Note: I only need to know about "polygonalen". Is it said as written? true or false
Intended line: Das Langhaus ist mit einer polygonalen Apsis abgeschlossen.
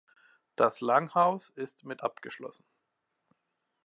false